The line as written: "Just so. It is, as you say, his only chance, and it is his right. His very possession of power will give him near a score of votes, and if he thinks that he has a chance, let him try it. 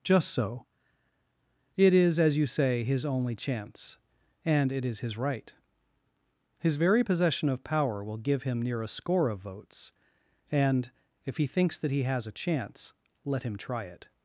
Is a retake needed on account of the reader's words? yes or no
no